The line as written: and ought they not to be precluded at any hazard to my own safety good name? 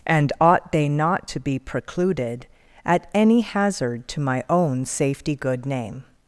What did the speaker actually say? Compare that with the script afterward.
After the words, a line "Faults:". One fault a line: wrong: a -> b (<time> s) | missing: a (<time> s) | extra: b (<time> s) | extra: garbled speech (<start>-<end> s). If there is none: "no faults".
and ought they not to be precluded at any hazard to my own safety good name?
Faults:
no faults